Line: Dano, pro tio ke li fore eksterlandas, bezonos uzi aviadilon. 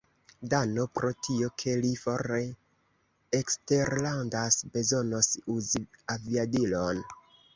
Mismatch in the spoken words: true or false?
false